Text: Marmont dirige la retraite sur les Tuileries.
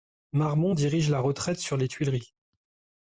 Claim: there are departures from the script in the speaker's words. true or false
false